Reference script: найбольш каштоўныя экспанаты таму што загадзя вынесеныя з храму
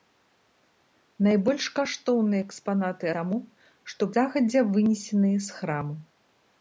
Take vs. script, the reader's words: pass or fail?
pass